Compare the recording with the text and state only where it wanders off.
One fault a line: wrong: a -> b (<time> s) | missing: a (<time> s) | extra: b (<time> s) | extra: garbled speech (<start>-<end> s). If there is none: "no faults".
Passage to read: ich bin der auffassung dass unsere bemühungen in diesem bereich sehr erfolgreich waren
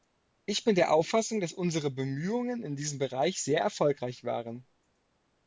no faults